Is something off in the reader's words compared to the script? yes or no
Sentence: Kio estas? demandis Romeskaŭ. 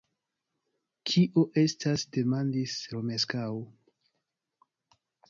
no